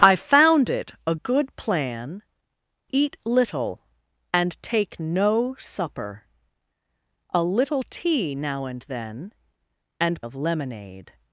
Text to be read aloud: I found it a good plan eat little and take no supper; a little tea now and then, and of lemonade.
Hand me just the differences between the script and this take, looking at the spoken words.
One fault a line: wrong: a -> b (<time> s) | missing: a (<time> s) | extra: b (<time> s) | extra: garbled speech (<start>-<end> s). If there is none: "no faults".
no faults